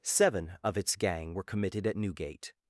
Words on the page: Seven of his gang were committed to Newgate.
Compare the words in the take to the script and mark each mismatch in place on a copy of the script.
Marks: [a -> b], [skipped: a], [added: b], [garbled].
Seven of [his -> its] gang were committed [to -> at] Newgate.